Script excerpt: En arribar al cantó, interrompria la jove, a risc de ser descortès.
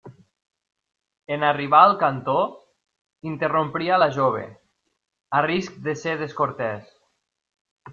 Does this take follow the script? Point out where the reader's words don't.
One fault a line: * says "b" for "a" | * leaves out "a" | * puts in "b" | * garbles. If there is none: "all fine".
all fine